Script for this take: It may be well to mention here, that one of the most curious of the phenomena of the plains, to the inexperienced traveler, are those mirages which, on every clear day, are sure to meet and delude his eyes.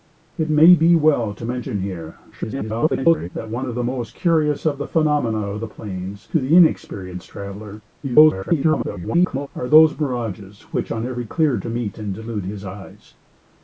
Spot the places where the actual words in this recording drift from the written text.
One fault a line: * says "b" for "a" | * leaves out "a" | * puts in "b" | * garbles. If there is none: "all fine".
* garbles
* garbles
* leaves out "day are sure"